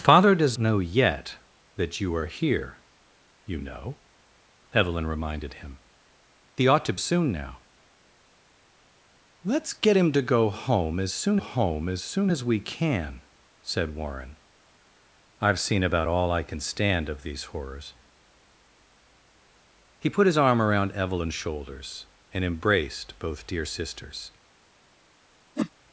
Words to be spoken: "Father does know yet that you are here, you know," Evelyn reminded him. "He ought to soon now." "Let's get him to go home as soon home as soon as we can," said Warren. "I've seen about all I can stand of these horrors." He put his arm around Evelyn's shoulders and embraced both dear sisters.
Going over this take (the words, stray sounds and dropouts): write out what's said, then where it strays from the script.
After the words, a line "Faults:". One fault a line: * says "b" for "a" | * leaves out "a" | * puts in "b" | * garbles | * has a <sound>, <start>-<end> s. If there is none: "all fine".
"Father does know yet that you are here, you know," Evelyn reminded him. "He ought to soon now." "Let's get him to go home as soon home as soon as we can," said Warren. "I've seen about all I can stand of these horrors." He put his arm around Evelyn's shoulders and embraced both dear sisters.
Faults:
* has a whoosh, 25.6-25.7 s